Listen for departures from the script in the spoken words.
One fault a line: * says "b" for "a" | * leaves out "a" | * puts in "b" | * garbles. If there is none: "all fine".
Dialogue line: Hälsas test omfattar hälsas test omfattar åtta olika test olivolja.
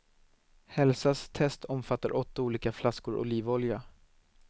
* leaves out "hälsas test omfattar"
* says "flaskor" for "test"